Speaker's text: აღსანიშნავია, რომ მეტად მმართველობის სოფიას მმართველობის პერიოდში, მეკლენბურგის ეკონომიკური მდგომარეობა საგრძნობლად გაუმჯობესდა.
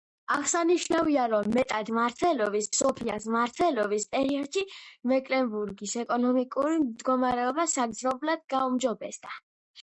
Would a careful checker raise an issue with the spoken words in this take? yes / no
no